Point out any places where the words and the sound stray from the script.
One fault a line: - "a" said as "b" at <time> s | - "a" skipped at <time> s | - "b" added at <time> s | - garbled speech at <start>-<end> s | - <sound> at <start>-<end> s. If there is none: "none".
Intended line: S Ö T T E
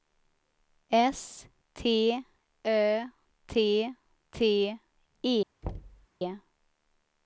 - "T" added at 1.8 s
- thud at 5.6-6.1 s